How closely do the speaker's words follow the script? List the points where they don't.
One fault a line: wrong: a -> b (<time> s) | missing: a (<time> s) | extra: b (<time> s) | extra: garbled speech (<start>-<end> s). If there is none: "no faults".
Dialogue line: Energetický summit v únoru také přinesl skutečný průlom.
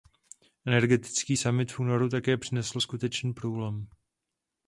no faults